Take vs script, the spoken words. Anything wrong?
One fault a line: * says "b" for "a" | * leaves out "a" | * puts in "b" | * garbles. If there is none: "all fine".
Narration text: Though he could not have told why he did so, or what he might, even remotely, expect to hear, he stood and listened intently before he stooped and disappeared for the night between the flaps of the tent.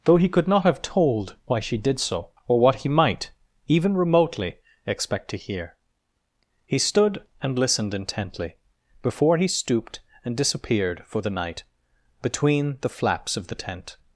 * says "she" for "he"